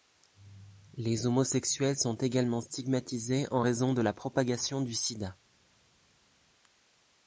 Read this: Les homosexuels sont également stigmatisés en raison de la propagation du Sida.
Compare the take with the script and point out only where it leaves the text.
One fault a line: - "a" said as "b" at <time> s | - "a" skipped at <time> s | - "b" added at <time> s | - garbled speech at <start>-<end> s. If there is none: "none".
none